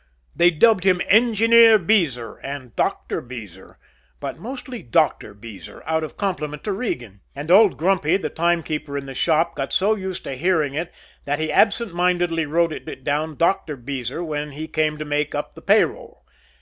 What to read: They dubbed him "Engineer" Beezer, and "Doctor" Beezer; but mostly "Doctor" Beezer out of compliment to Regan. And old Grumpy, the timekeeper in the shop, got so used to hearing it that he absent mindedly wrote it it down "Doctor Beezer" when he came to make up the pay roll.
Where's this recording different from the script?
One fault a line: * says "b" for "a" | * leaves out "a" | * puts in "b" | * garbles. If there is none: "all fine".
all fine